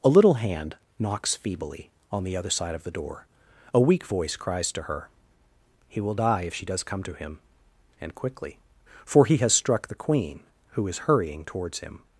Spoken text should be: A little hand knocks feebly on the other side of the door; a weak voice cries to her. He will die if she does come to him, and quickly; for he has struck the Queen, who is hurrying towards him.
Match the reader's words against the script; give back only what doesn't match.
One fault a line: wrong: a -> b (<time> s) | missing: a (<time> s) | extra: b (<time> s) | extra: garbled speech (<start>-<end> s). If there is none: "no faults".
no faults